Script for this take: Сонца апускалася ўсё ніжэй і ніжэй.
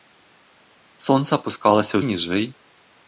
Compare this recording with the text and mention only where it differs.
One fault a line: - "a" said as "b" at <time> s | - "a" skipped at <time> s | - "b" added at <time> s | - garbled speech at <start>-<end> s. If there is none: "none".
- "ўсё ніжэй" skipped at 1.9 s